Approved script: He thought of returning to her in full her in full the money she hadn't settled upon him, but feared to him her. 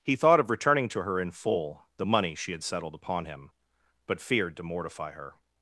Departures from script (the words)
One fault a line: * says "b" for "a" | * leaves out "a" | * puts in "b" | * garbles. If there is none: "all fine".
* leaves out "her in full"
* says "had" for "hadn't"
* says "mortify" for "him"